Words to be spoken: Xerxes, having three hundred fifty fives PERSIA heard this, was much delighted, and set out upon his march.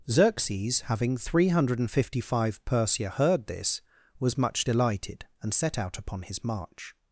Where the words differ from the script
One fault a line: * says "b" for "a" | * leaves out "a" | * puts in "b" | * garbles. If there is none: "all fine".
* says "five" for "fives"